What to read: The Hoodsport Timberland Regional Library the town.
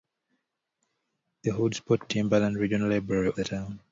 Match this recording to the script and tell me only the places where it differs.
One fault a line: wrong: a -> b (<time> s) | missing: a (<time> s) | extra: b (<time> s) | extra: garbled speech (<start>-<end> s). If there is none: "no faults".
no faults